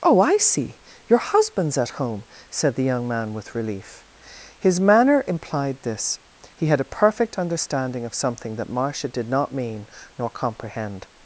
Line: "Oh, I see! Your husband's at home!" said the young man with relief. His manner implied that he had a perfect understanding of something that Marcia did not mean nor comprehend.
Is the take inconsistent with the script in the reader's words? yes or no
yes